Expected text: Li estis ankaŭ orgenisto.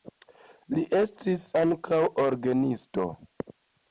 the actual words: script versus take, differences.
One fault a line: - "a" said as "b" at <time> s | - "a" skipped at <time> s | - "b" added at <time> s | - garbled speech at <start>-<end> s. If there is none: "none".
none